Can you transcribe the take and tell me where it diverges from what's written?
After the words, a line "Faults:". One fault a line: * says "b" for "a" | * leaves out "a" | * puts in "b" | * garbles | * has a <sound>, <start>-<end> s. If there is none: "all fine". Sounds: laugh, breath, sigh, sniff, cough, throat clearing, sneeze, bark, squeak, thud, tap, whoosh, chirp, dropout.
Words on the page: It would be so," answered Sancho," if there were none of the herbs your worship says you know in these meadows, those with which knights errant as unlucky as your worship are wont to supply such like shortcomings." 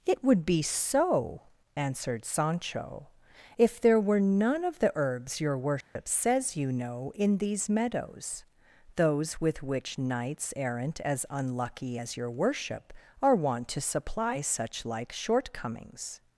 It would be so," answered Sancho," if there were none of the herbs your worship says you know in these meadows, those with which knights errant as unlucky as your worship are wont to supply such like shortcomings."
Faults:
* has a dropout, 5.8-6.0 s